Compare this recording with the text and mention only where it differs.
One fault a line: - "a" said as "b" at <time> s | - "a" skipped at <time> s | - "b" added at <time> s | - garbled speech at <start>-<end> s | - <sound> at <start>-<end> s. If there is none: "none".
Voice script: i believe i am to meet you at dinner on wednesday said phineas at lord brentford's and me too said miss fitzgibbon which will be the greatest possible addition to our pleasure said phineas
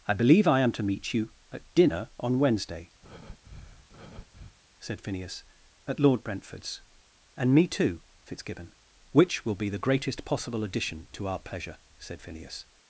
- breath at 3.0-4.6 s
- "said miss" skipped at 8.0 s